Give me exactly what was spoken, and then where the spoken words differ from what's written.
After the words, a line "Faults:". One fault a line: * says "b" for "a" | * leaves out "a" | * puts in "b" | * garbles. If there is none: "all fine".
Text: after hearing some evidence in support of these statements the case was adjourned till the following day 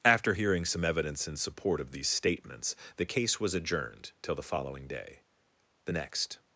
after hearing some evidence in support of these statements the case was adjourned till the following day the next
Faults:
* puts in "the next"